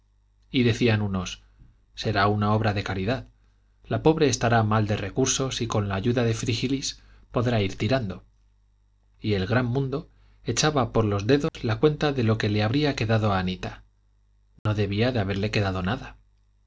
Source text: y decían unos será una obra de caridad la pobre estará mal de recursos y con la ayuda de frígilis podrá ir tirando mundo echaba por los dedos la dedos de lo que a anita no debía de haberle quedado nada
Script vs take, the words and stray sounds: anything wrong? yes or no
yes